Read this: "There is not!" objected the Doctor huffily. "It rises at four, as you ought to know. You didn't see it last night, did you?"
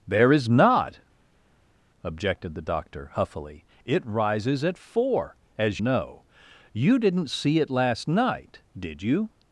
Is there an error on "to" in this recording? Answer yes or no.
yes